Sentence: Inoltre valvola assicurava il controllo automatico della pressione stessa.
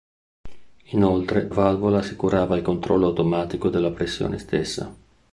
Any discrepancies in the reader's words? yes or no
no